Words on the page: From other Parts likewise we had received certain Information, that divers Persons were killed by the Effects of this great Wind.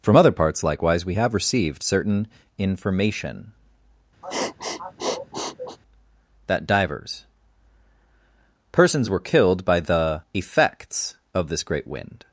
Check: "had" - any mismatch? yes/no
yes